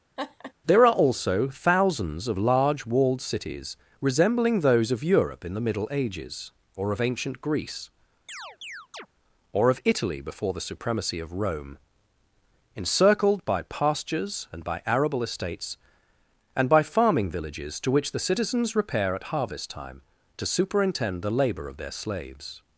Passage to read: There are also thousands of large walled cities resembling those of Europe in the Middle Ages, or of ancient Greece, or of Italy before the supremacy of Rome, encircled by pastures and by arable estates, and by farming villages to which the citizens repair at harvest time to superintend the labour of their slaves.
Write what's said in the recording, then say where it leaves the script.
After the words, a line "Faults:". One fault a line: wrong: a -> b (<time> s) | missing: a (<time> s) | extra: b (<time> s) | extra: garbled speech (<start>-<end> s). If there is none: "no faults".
There are also thousands of large walled cities resembling those of Europe in the Middle Ages, or of ancient Greece, or of Italy before the supremacy of Rome, encircled by pastures and by arable estates, and by farming villages to which the citizens repair at harvest time to superintend the labour of their slaves.
Faults:
no faults